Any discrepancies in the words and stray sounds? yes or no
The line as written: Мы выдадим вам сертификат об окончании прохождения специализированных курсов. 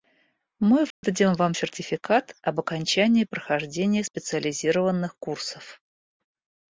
yes